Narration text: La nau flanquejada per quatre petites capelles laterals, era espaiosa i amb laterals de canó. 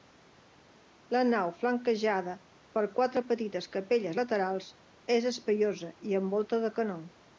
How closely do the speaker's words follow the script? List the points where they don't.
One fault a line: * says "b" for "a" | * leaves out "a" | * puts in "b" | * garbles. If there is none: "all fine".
* says "és" for "era"
* says "volta" for "laterals"